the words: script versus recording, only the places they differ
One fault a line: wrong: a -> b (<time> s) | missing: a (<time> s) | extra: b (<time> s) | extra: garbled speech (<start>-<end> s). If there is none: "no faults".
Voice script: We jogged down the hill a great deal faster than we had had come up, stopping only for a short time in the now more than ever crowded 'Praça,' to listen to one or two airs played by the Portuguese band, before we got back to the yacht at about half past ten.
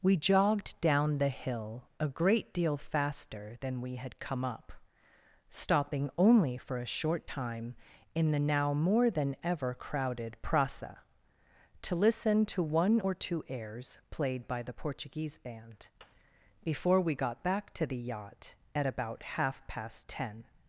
missing: had (4.2 s)